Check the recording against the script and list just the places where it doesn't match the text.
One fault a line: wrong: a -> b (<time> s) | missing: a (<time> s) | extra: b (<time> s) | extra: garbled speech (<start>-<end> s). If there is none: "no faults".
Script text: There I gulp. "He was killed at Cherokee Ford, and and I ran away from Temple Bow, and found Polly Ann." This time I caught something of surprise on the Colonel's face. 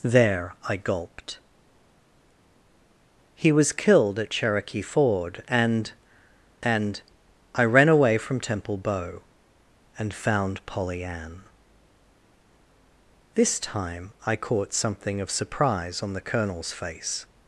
wrong: gulp -> gulped (0.8 s)